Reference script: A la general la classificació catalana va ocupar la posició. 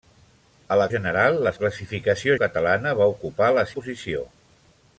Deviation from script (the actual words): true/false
false